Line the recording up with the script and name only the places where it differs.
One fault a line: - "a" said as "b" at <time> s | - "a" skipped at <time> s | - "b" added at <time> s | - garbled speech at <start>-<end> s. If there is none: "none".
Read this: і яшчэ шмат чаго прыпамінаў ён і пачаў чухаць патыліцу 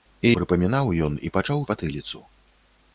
- "яшчэ шмат чаго" skipped at 0.3 s
- "чухаць" skipped at 1.6 s